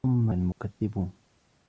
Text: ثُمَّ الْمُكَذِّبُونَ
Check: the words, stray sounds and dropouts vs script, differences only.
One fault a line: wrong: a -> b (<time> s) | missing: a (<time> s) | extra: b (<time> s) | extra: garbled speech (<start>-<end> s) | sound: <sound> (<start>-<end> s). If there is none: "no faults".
sound: dropout (0.5-0.6 s)